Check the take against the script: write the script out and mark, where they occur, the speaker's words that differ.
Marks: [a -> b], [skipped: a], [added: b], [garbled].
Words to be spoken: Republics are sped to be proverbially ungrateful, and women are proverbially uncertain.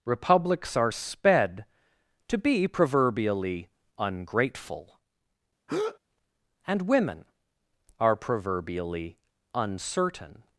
Republics are sped to be proverbially ungrateful, and women are proverbially uncertain.